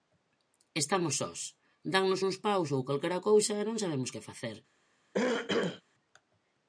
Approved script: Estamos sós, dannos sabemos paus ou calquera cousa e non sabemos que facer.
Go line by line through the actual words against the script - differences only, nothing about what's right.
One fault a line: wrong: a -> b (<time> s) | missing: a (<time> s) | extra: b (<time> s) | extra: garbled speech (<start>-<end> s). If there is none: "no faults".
wrong: sabemos -> uns (2.3 s)